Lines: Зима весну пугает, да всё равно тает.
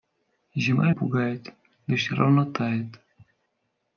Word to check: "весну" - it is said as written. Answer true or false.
false